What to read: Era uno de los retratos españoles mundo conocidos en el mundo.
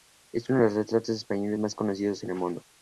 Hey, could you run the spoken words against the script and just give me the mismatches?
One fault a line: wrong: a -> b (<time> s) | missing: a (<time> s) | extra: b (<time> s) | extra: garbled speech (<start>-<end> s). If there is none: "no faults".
wrong: Era -> Es (0.3 s)
wrong: mundo -> más (1.6 s)